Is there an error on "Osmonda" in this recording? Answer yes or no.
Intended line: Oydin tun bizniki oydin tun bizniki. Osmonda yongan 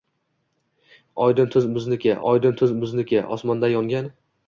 no